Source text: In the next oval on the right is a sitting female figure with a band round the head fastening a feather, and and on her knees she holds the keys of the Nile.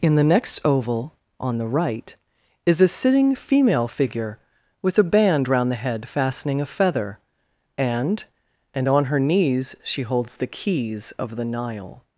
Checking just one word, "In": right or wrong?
right